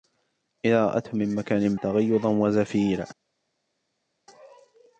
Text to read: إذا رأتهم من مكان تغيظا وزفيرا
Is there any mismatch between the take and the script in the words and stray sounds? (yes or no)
no